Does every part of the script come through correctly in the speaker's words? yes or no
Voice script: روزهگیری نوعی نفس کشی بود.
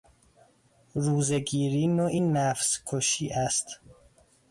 no